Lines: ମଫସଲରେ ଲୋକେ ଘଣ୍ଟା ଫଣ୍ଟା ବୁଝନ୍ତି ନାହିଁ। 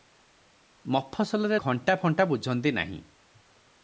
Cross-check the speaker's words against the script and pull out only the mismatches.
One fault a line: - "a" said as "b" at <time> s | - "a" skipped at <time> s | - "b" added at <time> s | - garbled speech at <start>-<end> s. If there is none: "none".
- "ଲୋକେ" skipped at 1.6 s